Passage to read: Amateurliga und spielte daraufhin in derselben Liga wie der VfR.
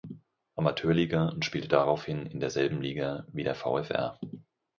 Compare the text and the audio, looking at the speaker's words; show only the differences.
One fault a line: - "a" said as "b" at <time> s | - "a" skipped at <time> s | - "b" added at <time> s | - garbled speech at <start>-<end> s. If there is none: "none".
none